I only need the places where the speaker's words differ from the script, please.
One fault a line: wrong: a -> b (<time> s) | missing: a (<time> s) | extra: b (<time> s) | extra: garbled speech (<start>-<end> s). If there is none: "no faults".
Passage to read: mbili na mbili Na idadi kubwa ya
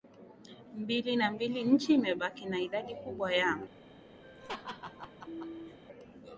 extra: Nchi imebaki (1.6 s)